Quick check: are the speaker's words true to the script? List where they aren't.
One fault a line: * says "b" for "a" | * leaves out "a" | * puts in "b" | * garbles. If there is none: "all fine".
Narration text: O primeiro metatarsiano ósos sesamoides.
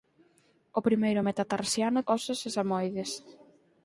all fine